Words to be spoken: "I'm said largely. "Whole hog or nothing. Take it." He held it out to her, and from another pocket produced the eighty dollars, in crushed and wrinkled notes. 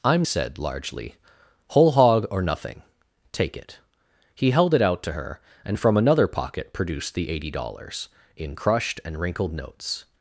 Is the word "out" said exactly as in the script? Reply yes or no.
yes